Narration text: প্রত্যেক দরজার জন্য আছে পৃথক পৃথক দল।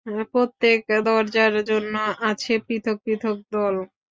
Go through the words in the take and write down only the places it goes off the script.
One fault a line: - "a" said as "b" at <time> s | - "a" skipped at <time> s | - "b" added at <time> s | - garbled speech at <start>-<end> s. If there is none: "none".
none